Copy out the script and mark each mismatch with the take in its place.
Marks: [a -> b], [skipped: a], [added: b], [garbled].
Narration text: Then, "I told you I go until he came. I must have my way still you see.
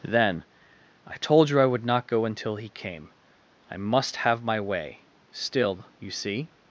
Then, "I told you I [added: would not] go until he came. I must have my way still you see.